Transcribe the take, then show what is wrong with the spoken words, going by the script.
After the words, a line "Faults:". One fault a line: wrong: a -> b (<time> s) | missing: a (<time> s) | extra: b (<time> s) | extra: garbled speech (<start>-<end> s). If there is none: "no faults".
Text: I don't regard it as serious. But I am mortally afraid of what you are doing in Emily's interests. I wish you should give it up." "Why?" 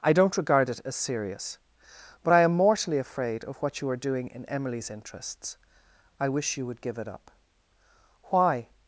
I don't regard it as serious. But I am mortally afraid of what you are doing in Emily's interests. I wish you would give it up." "Why?"
Faults:
wrong: should -> would (6.7 s)